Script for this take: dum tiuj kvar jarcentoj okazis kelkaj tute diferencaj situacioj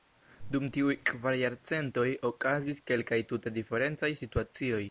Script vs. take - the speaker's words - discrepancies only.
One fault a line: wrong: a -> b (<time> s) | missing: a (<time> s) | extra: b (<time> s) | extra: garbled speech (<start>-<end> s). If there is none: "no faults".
no faults